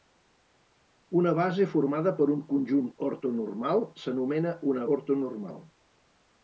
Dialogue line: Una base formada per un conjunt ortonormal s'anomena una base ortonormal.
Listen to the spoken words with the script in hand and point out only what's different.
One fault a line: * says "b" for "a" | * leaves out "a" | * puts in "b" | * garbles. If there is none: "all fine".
* leaves out "base"